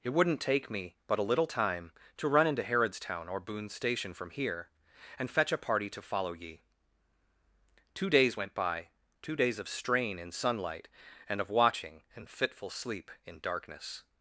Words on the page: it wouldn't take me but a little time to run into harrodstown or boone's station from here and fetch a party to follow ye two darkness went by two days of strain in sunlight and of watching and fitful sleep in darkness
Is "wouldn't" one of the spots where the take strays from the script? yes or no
no